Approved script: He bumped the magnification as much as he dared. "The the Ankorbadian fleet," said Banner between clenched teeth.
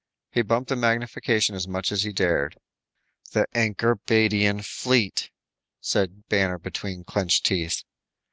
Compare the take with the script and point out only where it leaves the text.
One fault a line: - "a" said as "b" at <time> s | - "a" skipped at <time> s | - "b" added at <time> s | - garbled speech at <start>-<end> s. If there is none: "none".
- "the" skipped at 3.5 s